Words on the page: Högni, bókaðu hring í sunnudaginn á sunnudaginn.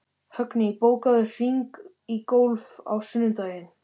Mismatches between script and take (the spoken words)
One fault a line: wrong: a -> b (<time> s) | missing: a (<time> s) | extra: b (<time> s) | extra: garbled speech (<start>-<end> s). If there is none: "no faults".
wrong: sunnudaginn -> golf (2.3 s)